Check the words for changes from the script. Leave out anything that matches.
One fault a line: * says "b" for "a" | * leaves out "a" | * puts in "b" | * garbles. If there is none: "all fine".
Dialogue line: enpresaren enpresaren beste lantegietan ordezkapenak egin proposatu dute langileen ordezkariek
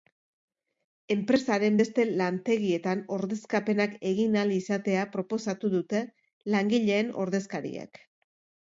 * leaves out "enpresaren"
* puts in "ahal izatea"